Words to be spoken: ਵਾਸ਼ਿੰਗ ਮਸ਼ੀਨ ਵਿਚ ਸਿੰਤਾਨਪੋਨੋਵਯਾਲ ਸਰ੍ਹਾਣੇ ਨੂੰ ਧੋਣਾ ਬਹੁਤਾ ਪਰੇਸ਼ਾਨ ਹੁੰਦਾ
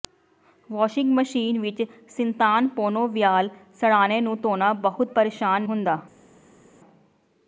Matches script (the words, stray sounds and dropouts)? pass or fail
pass